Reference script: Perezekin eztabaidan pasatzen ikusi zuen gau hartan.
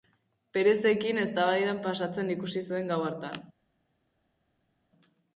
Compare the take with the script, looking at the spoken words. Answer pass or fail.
pass